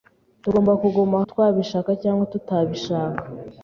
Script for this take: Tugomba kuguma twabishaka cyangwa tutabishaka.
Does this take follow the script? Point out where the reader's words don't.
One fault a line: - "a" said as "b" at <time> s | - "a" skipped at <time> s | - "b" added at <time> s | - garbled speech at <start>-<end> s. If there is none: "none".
none